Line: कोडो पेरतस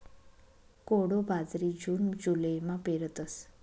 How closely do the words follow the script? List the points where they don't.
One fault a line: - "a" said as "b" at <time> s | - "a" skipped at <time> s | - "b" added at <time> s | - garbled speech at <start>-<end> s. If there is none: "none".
- "बाजरी जून जुलैमा" added at 1.3 s